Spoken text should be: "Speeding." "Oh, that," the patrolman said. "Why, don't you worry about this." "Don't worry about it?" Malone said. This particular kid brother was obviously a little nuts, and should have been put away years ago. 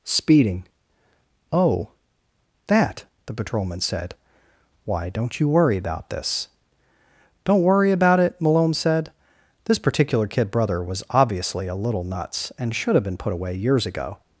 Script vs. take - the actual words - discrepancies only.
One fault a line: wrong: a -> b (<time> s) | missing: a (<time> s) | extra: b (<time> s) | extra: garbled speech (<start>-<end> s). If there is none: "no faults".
no faults